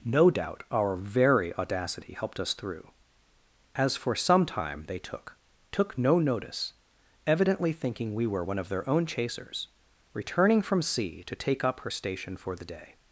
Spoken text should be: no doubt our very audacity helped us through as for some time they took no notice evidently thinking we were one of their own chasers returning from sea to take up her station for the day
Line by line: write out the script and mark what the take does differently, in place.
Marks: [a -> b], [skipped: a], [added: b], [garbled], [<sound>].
no doubt our very audacity helped us through as for some time they took [added: took] no notice evidently thinking we were one of their own chasers returning from sea to take up her station for the day